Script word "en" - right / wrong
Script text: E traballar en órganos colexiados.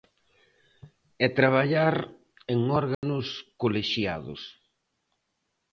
right